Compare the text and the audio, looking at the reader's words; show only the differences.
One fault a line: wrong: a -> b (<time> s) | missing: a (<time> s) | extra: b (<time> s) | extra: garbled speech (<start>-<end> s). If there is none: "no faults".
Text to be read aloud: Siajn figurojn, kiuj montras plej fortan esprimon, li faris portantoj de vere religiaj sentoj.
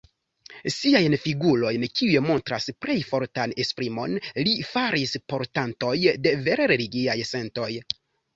no faults